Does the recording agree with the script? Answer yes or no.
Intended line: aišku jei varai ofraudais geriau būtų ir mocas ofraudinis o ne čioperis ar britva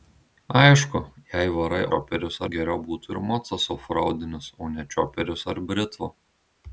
no